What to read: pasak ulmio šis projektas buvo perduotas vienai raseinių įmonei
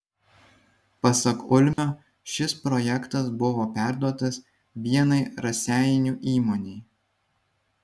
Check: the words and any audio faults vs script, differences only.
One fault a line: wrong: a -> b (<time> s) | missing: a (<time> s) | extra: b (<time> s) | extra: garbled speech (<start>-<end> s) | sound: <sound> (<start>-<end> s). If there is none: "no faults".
sound: dropout (1.7-1.8 s)